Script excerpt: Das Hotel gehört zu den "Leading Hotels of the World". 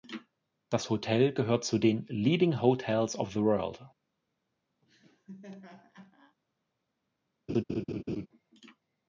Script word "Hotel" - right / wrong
right